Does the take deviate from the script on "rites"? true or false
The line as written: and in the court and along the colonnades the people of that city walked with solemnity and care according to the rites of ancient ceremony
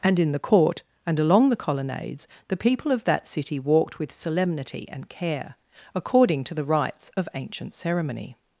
false